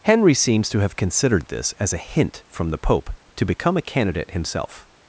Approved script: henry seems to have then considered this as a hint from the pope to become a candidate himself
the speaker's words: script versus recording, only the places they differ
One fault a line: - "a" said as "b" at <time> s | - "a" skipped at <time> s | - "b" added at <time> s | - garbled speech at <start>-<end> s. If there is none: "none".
- "then" skipped at 0.9 s